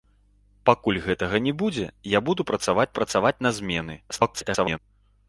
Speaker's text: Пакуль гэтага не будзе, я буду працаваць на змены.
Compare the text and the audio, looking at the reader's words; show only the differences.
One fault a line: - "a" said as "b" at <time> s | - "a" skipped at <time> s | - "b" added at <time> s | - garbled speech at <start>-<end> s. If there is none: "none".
- "працаваць" added at 3.0 s
- garbled speech at 4.1-4.8 s